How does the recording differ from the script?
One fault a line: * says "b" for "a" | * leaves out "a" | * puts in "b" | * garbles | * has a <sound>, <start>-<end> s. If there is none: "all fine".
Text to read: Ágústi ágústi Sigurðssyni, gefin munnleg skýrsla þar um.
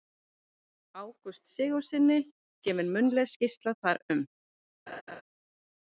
* leaves out "ágústi"
* has a laugh, 4.9-5.2 s